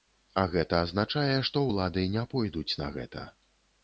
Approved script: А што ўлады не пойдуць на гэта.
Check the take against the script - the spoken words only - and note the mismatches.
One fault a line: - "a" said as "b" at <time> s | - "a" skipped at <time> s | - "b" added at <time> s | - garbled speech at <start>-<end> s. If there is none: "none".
- "гэта азначае" added at 0.5 s